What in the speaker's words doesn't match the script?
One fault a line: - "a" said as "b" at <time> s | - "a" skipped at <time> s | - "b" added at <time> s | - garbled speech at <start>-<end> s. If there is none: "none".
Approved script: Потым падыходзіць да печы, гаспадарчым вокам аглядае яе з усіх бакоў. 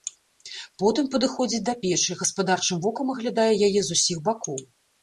none